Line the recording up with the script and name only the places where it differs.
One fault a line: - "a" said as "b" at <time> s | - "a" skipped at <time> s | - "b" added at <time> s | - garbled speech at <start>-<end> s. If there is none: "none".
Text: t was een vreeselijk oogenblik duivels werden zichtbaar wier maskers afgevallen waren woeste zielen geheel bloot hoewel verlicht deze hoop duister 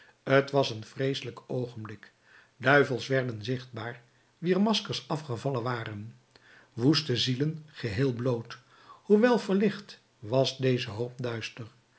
- "was" added at 10.2 s